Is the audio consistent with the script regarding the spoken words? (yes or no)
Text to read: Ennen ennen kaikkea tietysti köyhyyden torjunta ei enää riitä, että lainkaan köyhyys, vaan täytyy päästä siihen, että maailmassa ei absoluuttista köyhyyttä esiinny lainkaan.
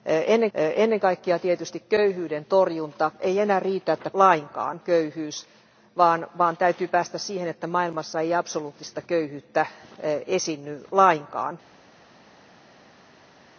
yes